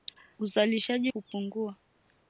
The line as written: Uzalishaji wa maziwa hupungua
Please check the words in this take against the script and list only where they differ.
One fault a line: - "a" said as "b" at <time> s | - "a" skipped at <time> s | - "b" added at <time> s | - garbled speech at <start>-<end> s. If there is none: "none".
- "wa maziwa" skipped at 1.1 s